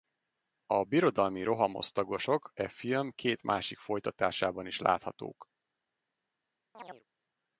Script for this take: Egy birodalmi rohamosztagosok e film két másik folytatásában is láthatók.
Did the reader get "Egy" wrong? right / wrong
wrong